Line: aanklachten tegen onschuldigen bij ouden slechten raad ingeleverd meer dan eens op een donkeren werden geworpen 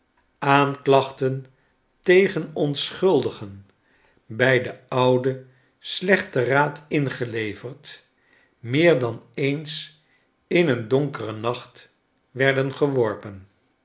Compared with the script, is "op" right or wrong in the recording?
wrong